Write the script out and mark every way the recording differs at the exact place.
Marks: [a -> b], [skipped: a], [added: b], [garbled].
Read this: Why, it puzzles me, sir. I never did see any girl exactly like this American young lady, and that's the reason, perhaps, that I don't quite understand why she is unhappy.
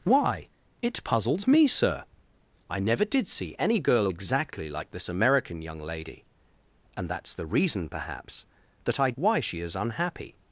Why, it puzzles me, sir. I never did see any girl exactly like this American young lady, and that's the reason, perhaps, that I [skipped: don't quite understand] why she is unhappy.